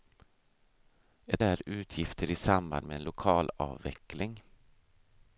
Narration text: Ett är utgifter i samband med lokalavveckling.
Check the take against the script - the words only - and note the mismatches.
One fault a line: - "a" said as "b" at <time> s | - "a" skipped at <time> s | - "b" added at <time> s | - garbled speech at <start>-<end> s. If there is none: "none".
none